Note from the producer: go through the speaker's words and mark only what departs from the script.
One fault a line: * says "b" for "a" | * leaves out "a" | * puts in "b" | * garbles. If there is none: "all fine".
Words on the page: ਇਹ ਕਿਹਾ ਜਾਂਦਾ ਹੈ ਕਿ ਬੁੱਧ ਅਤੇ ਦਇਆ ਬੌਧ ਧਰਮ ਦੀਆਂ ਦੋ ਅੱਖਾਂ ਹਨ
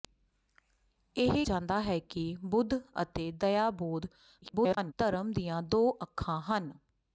* leaves out "ਕਿਹਾ"
* garbles